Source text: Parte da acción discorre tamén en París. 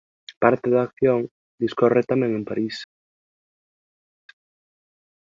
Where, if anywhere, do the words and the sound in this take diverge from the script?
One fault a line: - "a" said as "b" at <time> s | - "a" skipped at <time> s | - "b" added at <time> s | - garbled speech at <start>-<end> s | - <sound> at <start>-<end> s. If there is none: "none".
none